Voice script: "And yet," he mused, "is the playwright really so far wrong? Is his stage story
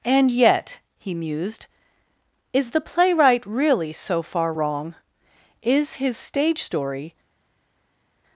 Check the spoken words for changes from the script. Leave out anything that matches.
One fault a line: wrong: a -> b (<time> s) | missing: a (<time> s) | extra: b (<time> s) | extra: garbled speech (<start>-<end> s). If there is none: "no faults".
no faults